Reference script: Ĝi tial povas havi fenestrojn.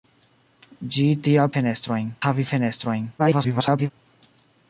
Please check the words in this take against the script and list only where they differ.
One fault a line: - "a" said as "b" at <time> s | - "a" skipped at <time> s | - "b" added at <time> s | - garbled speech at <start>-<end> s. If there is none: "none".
- "povas" said as "fenestrojn" at 1.6 s
- garbled speech at 3.2-3.9 s